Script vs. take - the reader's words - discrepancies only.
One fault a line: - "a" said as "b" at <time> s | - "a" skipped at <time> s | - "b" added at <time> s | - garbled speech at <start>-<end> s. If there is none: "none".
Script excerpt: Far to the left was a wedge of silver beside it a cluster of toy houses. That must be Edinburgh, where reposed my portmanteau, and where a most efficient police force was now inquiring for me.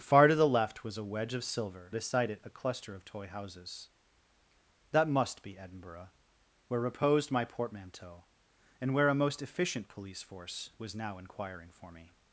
none